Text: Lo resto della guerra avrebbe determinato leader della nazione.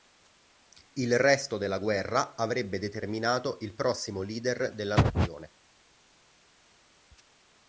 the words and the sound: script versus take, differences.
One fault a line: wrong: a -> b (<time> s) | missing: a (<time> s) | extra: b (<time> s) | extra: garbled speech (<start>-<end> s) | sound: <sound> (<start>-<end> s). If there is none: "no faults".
wrong: Lo -> Il (0.9 s)
extra: il prossimo (3.6 s)